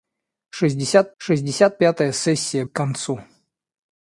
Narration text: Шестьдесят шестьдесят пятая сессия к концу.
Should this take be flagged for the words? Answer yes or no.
no